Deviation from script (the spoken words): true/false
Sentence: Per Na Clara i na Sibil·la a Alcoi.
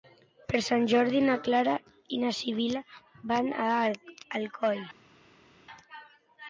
true